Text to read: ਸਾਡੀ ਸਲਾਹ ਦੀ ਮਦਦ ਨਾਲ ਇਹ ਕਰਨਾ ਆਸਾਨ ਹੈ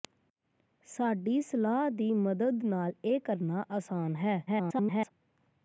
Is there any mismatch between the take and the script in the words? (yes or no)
yes